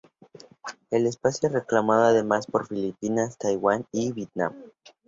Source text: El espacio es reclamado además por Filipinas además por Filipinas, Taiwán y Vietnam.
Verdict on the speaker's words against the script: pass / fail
fail